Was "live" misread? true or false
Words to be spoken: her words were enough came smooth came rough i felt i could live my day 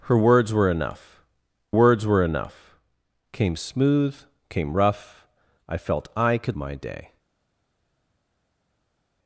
true